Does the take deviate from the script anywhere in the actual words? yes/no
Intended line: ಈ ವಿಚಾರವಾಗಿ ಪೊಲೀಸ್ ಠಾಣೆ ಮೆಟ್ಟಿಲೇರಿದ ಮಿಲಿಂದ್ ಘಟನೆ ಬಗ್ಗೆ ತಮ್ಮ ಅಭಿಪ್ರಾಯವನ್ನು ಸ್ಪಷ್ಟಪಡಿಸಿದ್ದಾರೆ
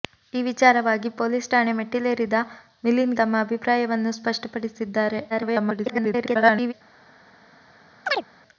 yes